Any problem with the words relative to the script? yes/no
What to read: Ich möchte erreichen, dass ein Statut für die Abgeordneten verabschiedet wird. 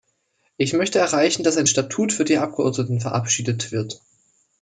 no